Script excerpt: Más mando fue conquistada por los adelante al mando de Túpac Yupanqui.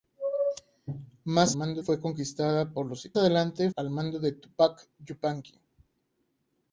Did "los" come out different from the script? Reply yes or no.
no